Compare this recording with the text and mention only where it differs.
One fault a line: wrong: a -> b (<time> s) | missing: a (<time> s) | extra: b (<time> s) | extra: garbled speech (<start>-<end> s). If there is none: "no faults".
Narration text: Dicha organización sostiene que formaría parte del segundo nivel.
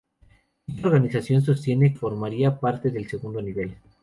missing: que (1.9 s)